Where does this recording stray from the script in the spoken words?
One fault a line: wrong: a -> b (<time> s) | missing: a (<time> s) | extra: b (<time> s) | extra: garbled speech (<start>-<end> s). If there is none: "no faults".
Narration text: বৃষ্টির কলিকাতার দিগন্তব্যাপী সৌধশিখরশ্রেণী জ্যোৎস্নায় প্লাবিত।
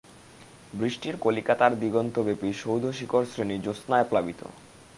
no faults